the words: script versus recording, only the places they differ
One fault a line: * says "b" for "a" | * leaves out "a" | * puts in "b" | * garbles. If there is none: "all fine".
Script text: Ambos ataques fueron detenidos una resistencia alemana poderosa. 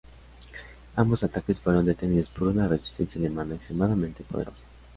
* puts in "por"
* puts in "extremadamente"